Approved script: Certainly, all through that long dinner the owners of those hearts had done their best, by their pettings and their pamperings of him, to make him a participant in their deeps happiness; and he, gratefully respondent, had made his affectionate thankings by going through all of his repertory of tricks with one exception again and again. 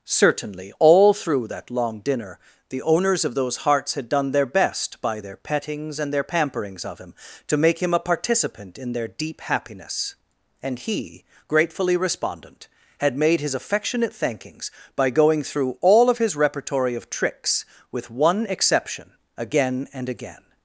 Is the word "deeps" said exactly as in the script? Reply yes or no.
no